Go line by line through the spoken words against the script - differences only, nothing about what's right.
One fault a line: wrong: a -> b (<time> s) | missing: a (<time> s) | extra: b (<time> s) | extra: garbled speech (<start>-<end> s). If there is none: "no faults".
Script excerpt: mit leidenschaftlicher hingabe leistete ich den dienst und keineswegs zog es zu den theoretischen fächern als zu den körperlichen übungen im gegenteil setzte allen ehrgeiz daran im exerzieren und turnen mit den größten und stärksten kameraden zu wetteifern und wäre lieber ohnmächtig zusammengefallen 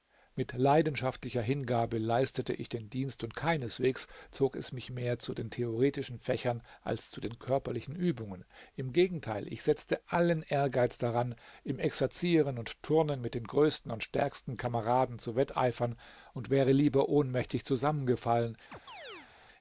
extra: mich mehr (4.7 s)
extra: ich (9.5 s)